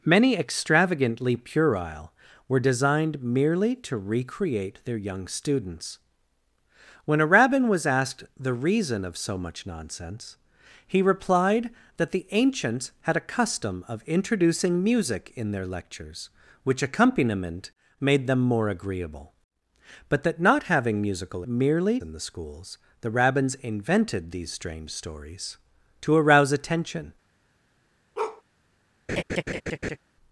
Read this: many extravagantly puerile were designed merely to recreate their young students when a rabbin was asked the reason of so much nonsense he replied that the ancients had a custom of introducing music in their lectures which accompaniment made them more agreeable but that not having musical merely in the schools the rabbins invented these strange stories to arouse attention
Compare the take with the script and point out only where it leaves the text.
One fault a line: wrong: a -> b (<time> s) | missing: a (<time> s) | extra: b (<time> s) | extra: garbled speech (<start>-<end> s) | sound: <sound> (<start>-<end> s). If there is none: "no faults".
sound: bark (28.2-28.4 s)
sound: laugh (29.1-30.0 s)